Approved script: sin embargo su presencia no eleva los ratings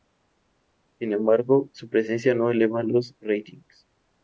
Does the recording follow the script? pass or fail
pass